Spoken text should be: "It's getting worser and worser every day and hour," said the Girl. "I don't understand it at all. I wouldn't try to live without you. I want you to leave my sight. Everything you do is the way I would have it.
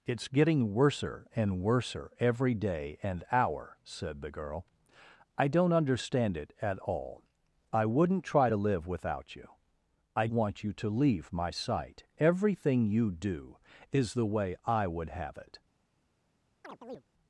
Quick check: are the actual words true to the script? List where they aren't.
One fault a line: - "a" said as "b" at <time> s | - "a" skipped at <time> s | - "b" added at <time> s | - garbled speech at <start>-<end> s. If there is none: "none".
none